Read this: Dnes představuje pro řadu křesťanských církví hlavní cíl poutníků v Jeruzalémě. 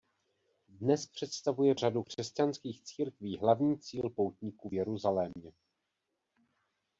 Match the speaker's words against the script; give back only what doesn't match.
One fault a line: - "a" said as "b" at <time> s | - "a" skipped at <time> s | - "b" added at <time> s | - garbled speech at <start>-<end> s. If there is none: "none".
- "pro" skipped at 1.8 s